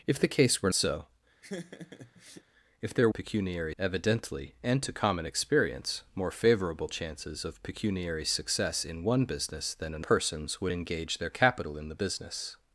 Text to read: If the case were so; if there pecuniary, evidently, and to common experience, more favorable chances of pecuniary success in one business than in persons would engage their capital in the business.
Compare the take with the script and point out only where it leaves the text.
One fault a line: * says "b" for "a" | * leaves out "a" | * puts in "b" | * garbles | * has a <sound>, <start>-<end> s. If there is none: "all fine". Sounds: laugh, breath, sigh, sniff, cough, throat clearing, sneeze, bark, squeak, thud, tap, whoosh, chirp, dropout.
* has a laugh, 1.4-2.4 s